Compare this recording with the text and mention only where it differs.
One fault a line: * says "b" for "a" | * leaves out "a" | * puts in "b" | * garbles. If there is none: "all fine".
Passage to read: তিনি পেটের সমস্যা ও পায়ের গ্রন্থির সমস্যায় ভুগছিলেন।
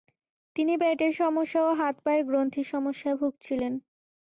* puts in "হাত"